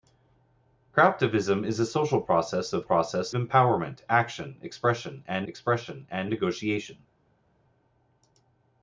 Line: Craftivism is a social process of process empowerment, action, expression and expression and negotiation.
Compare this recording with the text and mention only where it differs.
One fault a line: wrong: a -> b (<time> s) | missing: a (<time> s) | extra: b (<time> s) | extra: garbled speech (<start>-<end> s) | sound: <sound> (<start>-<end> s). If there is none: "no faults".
no faults